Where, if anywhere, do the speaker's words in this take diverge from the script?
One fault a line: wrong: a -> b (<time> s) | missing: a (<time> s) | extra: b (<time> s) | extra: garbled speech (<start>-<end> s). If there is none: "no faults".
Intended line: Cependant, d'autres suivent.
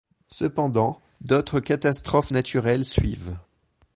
extra: catastrophes naturelles (1.6 s)